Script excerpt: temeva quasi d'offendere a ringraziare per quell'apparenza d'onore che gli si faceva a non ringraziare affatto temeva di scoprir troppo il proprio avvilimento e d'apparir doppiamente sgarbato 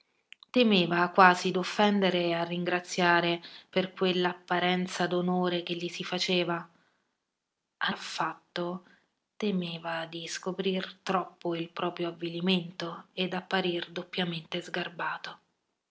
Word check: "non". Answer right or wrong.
wrong